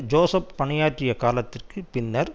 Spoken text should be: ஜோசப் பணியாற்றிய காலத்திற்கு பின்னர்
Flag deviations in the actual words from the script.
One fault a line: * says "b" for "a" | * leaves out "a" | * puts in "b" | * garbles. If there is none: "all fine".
all fine